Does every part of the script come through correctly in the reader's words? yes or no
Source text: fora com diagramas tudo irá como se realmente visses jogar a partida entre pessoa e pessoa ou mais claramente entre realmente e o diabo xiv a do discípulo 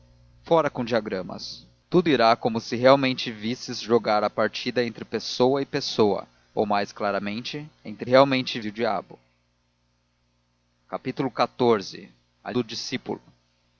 yes